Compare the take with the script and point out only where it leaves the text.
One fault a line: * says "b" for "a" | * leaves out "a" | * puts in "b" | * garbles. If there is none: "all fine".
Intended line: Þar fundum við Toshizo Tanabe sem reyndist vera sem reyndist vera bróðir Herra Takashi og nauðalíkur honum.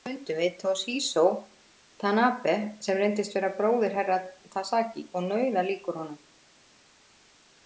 * leaves out "sem reyndist vera"